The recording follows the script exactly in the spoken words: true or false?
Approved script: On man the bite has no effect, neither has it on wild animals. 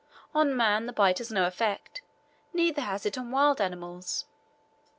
true